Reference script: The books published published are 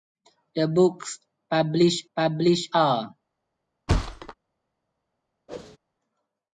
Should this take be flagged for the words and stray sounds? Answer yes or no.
yes